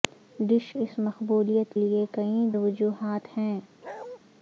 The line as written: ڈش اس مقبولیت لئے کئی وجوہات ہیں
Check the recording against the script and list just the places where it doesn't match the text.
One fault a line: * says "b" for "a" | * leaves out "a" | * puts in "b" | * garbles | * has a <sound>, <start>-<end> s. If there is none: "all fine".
* has a bark, 3.8-4.2 s